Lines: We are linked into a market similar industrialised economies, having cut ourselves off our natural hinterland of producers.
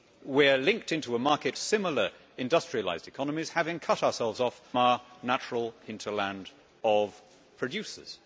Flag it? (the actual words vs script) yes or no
no